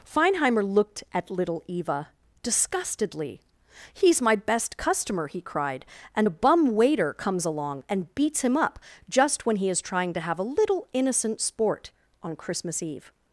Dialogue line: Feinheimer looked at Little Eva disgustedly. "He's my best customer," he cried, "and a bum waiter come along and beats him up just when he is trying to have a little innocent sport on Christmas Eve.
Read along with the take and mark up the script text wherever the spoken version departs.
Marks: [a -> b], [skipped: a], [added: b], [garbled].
Feinheimer looked at Little Eva disgustedly. "He's my best customer," he cried, "and a bum waiter [come -> comes] along and beats him up just when he is trying to have a little innocent sport on Christmas Eve.